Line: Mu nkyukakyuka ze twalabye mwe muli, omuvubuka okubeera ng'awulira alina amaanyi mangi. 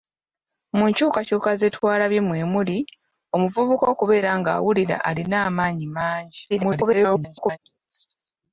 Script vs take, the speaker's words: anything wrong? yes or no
yes